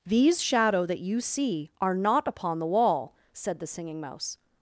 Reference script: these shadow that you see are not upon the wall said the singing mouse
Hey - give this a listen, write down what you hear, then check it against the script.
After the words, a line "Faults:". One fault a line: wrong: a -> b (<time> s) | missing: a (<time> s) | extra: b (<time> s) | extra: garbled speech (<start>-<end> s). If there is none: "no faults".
these shadow that you see are not upon the wall said the singing mouse
Faults:
no faults